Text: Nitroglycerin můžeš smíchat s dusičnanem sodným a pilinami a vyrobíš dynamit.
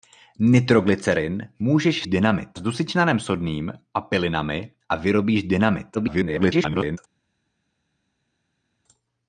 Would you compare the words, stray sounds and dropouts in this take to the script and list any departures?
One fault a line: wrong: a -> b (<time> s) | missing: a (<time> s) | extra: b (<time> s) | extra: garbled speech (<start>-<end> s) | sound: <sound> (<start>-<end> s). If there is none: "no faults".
wrong: smíchat -> dynamit (2.0 s)
extra: garbled speech (5.9-7.0 s)